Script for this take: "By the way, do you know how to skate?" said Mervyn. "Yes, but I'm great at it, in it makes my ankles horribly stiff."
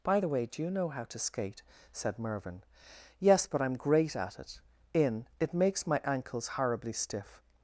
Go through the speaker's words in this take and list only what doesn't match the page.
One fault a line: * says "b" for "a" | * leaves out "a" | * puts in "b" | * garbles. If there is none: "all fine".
all fine